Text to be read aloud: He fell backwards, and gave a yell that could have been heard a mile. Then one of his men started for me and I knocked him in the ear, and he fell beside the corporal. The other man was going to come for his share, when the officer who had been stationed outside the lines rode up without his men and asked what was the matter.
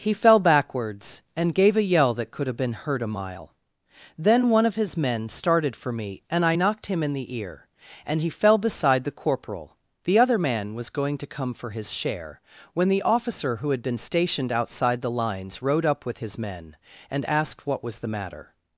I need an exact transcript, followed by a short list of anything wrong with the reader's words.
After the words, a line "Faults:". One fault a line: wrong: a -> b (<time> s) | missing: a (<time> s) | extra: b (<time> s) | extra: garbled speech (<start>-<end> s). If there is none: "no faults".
He fell backwards, and gave a yell that could have been heard a mile. Then one of his men started for me and I knocked him in the ear, and he fell beside the corporal. The other man was going to come for his share, when the officer who had been stationed outside the lines rode up with his men and asked what was the matter.
Faults:
wrong: without -> with (16.0 s)